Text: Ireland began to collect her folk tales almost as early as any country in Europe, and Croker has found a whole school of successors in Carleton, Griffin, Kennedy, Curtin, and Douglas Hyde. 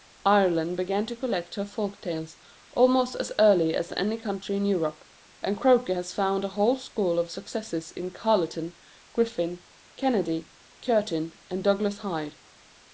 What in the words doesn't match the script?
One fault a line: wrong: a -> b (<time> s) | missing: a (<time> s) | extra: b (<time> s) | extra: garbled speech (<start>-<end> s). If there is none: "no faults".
no faults